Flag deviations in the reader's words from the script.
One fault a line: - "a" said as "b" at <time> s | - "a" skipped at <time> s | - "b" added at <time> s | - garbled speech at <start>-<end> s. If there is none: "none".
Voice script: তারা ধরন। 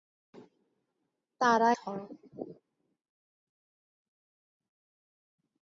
none